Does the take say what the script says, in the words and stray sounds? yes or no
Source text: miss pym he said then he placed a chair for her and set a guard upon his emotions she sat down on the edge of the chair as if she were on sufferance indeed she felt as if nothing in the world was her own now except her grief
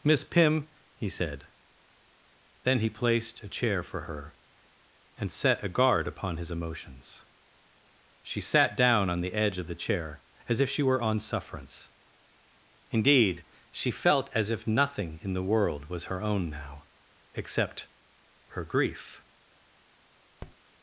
no